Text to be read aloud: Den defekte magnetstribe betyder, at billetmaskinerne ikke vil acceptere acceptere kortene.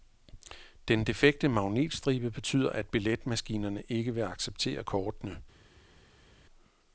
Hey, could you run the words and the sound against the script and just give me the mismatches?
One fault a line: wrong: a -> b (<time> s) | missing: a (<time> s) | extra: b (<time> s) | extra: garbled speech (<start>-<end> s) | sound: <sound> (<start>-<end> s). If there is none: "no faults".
missing: acceptere (4.8 s)